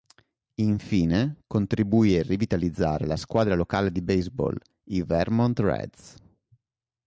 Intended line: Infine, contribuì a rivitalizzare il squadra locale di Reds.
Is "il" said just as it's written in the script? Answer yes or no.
no